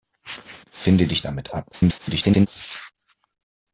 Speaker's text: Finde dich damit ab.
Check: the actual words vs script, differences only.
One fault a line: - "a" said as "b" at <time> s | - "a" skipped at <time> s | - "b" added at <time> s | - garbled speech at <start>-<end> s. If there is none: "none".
- garbled speech at 1.7-2.5 s